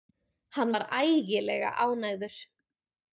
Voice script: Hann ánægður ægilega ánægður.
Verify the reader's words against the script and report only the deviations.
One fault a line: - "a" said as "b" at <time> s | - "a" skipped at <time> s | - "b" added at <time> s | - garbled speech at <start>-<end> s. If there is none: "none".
- "ánægður" said as "var" at 0.7 s